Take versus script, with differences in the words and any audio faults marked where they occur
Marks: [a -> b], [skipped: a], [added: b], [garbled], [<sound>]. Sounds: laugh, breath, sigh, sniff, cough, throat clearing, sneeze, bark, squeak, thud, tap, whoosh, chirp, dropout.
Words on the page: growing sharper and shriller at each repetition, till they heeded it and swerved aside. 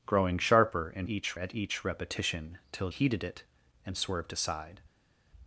growing sharper and [shriller -> each] at each repetition, till [skipped: they] heeded it and swerved aside.